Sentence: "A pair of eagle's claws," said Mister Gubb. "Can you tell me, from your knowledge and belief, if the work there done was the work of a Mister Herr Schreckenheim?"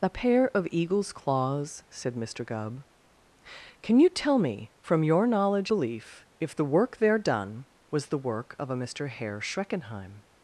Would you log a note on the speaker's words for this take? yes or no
yes